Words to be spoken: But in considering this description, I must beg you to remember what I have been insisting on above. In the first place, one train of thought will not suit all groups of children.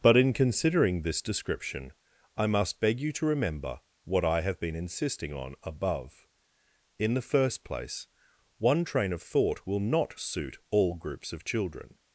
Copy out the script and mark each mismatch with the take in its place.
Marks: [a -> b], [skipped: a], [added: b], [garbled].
But in considering this description, I must beg you to remember what I have been insisting on above. In the first place, one train of thought will not suit all groups of children.